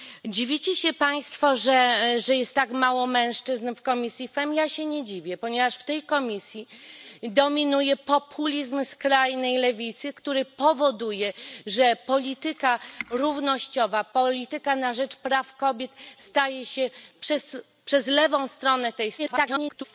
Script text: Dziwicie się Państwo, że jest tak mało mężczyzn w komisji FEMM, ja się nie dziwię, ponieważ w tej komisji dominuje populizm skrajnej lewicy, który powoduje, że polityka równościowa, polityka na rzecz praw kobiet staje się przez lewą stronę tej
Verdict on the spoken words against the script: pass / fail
fail